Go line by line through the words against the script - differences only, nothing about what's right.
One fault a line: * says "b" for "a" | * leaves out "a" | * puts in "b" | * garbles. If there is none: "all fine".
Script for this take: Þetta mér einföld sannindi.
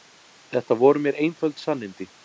* puts in "voru"